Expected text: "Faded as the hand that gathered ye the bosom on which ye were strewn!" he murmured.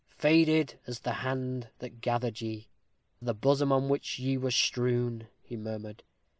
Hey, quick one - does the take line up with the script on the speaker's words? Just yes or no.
yes